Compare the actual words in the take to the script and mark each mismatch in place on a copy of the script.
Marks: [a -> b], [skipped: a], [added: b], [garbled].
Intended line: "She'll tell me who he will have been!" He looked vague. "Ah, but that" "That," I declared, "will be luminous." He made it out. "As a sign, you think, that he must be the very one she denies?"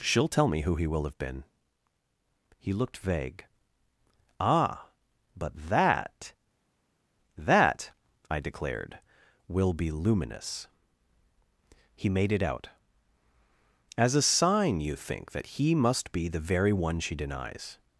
"She'll tell me who he will have been!" He looked vague. "Ah, but that" "That," I declared, "will be luminous." He made it out. "As a sign, you think, that he must be the very one she denies?"